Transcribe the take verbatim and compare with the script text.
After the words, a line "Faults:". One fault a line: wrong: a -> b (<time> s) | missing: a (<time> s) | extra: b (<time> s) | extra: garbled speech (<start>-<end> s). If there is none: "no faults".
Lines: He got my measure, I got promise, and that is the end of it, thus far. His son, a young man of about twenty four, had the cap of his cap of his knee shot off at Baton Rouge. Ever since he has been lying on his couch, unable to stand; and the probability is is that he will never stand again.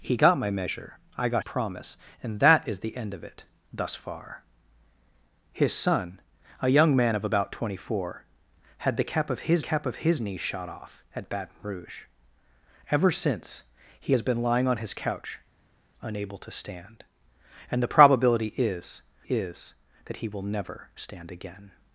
He got my measure, I got promise, and that is the end of it, thus far. His son, a young man of about twenty four, had the cap of his cap of his knee shot off at Baton Rouge. Ever since he has been lying on his couch, unable to stand; and the probability is is that he will never stand again.
Faults:
no faults